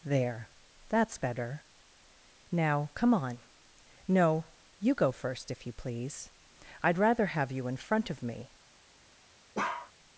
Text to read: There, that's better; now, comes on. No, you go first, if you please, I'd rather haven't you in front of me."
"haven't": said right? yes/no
no